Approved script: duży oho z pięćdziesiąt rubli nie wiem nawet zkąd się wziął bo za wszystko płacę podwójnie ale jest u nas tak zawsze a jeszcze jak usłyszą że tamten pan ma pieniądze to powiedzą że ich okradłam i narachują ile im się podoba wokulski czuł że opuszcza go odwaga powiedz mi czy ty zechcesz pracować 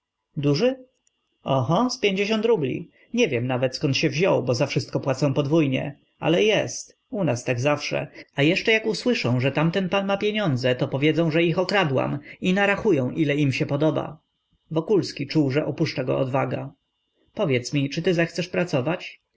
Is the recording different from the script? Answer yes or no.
no